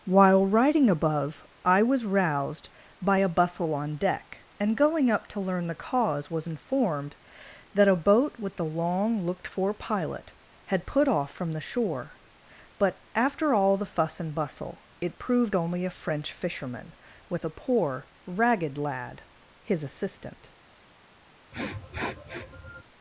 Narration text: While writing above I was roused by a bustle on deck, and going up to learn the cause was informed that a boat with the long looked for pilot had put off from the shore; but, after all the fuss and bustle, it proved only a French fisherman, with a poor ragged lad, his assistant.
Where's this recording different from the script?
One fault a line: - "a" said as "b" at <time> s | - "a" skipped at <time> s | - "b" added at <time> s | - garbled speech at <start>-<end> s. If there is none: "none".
none